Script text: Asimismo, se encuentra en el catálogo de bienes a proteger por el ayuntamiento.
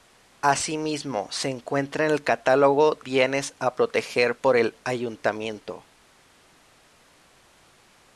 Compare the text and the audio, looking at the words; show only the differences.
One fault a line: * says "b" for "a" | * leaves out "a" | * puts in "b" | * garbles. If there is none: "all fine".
* leaves out "de"